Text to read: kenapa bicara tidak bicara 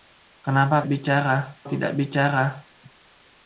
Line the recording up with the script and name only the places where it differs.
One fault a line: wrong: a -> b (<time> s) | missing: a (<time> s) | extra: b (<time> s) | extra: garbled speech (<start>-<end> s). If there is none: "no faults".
no faults